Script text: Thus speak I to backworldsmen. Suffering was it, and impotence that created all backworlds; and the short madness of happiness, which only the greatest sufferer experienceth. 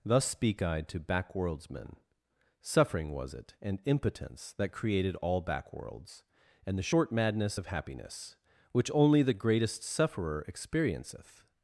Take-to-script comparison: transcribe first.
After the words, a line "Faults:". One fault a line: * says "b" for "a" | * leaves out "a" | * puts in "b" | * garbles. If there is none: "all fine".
Thus speak I to backworldsmen. Suffering was it, and impotence that created all backworlds; and the short madness of happiness, which only the greatest sufferer experienceth.
Faults:
all fine